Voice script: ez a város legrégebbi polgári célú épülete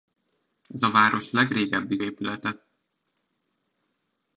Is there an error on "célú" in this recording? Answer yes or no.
yes